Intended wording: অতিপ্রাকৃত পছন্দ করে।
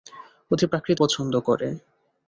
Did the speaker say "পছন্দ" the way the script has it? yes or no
yes